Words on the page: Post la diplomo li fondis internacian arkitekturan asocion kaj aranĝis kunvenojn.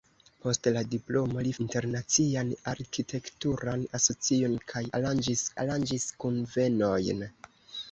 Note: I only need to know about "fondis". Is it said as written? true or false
false